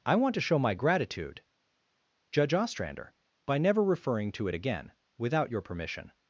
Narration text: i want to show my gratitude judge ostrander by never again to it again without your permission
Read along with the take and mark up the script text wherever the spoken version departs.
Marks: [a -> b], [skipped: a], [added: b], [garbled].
i want to show my gratitude judge ostrander by never [again -> referring] to it again without your permission